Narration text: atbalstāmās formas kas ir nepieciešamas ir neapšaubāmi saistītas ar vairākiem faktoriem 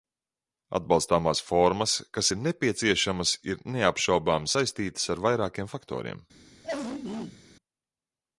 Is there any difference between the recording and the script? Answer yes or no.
no